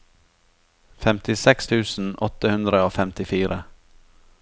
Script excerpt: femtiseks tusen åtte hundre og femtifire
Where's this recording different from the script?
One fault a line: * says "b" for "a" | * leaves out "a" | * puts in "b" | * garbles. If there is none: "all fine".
all fine